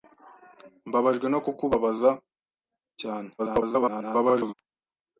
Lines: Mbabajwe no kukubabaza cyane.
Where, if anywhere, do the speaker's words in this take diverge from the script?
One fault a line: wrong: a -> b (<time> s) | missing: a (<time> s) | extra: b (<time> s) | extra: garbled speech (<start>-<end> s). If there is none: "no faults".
extra: garbled speech (3.4-4.5 s)